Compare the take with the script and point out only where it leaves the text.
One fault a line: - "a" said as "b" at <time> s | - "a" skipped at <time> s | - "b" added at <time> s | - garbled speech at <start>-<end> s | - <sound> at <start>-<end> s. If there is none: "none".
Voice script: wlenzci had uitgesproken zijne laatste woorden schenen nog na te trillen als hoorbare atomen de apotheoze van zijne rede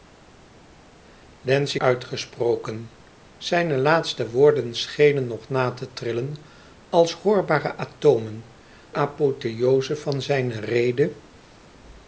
- "had" skipped at 1.8 s
- "de" skipped at 8.4 s